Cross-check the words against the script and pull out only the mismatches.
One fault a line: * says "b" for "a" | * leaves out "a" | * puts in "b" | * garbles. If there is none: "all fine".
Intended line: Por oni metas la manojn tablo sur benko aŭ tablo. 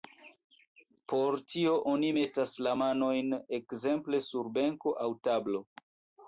* puts in "tio"
* says "ekzemple" for "tablo"